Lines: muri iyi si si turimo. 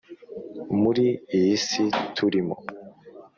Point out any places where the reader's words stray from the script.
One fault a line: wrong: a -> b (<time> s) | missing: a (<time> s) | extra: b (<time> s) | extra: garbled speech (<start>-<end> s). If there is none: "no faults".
missing: si (1.8 s)